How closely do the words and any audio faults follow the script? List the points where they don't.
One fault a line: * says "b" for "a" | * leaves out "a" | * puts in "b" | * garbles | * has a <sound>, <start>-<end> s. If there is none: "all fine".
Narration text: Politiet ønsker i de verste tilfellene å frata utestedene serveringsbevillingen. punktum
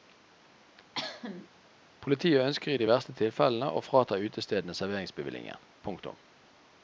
* has a cough, 0.9-1.5 s